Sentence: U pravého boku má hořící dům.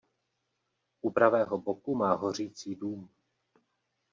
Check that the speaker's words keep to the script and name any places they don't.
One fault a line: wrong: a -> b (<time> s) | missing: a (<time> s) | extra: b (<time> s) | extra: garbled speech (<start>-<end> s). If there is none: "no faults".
no faults